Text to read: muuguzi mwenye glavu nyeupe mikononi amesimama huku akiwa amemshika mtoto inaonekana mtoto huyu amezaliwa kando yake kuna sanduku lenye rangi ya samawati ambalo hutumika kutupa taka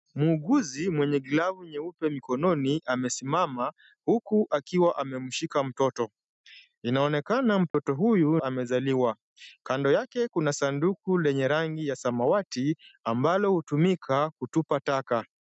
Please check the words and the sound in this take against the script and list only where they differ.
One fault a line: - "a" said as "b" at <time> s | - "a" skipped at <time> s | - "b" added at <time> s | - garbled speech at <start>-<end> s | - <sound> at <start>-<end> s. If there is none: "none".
- dropout at 7.7-7.7 s